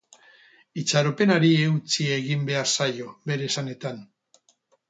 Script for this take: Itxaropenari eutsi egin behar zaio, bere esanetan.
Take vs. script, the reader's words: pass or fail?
pass